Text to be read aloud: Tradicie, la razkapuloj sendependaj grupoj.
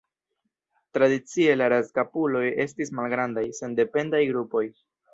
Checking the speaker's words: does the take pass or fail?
fail